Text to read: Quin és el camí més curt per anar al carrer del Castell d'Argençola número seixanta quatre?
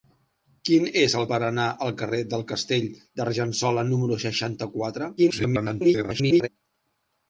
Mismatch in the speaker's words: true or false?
true